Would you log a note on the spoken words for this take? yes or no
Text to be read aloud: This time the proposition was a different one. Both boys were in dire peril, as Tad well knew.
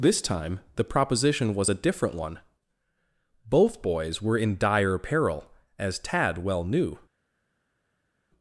no